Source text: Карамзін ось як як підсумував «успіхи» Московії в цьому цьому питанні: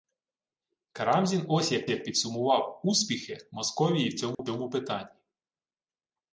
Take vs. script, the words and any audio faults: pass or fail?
fail